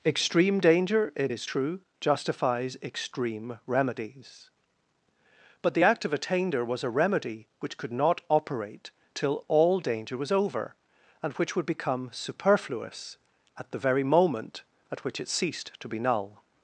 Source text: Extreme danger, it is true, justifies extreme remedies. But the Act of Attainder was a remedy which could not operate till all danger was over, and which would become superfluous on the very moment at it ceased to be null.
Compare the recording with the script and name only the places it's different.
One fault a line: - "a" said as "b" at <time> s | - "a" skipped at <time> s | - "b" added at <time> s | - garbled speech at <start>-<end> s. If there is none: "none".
- "on" said as "at" at 13.6 s
- "which" added at 15.0 s